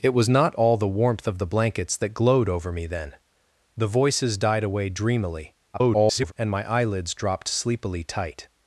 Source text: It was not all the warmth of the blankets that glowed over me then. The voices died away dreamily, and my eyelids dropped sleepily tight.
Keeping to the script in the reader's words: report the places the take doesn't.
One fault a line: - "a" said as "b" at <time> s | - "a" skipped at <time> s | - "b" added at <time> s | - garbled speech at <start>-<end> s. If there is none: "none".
- garbled speech at 5.7-6.3 s